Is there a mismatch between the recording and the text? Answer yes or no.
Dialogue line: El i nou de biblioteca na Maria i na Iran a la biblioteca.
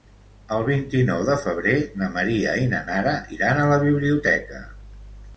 yes